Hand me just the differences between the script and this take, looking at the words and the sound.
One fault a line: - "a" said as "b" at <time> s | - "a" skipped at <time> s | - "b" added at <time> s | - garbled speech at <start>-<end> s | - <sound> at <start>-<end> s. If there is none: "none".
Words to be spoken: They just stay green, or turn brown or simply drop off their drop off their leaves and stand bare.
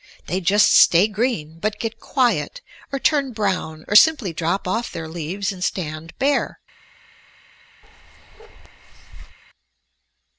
- "but get quiet" added at 1.6 s
- "drop off their" skipped at 5.1 s
- bark at 7.8-9.4 s